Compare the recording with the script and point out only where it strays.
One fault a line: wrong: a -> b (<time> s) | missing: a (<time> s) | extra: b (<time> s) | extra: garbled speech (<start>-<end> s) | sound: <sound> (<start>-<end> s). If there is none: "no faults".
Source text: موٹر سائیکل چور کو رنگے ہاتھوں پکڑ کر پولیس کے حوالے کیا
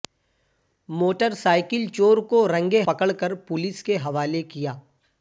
missing: ہاتھوں (2.8 s)